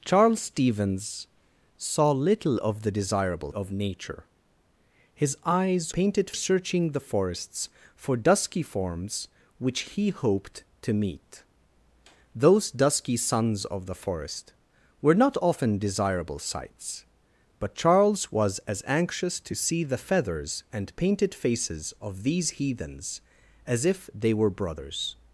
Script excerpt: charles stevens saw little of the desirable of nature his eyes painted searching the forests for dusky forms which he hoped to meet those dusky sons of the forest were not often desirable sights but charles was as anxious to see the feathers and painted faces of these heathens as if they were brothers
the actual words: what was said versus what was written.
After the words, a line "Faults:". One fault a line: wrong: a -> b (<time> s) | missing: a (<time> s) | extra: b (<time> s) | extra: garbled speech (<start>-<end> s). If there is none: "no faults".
charles stevens saw little of the desirable of nature his eyes painted searching the forests for dusky forms which he hoped to meet those dusky sons of the forest were not often desirable sights but charles was as anxious to see the feathers and painted faces of these heathens as if they were brothers
Faults:
no faults